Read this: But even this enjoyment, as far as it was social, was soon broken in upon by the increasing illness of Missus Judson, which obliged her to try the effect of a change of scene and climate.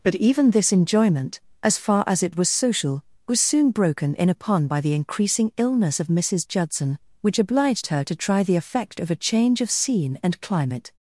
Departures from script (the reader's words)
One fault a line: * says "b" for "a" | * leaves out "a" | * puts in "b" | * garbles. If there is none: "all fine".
all fine